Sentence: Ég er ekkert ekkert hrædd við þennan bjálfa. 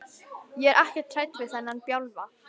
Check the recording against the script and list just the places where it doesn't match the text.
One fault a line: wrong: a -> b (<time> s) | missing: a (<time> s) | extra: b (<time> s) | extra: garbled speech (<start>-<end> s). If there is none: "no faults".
missing: ekkert (1.2 s)